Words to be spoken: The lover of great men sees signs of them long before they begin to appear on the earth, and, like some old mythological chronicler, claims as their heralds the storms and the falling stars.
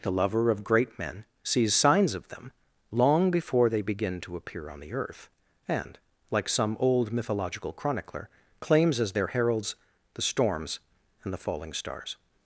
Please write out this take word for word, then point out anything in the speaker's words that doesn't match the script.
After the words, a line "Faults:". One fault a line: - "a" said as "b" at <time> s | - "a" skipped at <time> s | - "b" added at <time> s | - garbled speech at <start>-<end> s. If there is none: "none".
The lover of great men sees signs of them long before they begin to appear on the earth, and, like some old mythological chronicler, claims as their heralds the storms and the falling stars.
Faults:
none